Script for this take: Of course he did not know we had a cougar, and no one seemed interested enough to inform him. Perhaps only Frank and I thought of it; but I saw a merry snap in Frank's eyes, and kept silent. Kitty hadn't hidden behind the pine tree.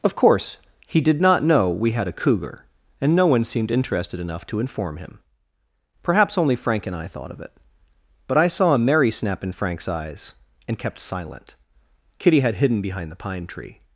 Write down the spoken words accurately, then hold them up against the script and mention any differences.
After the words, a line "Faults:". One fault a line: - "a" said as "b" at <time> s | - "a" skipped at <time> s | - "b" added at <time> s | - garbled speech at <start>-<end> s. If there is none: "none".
Of course he did not know we had a cougar, and no one seemed interested enough to inform him. Perhaps only Frank and I thought of it; but I saw a merry snap in Frank's eyes, and kept silent. Kitty had hidden behind the pine tree.
Faults:
- "hadn't" said as "had" at 12.4 s